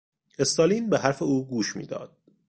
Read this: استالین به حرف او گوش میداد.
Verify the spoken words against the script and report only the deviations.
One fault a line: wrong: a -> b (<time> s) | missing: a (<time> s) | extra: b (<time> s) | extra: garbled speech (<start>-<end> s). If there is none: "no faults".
no faults